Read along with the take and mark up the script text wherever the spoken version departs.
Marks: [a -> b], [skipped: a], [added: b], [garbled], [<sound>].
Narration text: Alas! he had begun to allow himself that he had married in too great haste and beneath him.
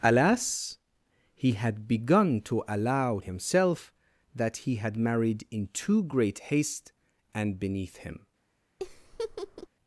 Alas! he had begun to allow himself that he had married in too great haste and beneath him. [laugh]